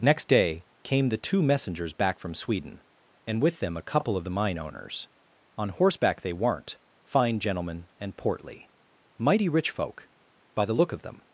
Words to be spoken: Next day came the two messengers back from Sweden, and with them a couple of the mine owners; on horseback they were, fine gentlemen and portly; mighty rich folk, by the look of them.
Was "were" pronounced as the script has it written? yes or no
no